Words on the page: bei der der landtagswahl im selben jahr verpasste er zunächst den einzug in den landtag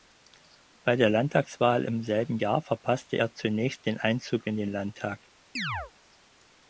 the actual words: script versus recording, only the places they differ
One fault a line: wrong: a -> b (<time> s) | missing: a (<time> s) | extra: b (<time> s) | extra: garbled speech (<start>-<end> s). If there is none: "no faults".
missing: der (1.1 s)